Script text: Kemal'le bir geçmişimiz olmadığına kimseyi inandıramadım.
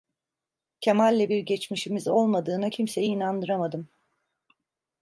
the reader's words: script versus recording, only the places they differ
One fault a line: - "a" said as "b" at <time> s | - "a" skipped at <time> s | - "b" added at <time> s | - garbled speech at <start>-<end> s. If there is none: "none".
none